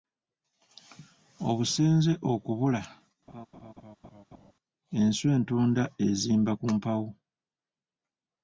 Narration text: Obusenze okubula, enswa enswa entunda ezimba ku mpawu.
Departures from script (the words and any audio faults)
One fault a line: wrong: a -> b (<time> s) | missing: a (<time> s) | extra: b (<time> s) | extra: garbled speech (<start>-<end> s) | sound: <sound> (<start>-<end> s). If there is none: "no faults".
sound: laugh (3.3-4.5 s)
missing: enswa (5.3 s)